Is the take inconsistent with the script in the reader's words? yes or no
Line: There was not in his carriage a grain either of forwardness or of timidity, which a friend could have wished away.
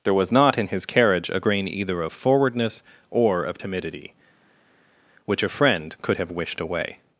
no